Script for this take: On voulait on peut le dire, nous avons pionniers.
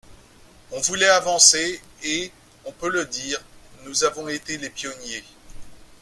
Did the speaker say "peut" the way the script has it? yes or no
yes